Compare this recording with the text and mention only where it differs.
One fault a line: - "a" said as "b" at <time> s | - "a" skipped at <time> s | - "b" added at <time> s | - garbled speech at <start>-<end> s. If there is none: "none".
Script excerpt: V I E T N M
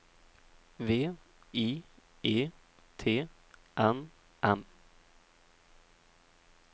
none